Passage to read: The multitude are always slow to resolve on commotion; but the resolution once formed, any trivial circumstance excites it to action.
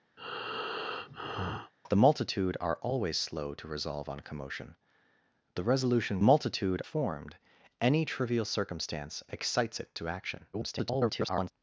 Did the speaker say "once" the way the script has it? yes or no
no